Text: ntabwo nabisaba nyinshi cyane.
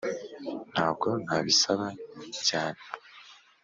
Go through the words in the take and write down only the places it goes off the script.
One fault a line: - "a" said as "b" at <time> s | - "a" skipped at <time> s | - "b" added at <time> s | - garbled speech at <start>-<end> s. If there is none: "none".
- "nyinshi" skipped at 1.9 s